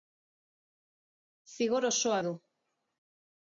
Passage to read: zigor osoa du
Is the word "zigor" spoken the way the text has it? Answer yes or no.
yes